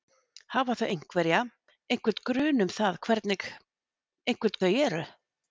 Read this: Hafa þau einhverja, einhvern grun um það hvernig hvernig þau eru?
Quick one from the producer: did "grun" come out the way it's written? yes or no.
yes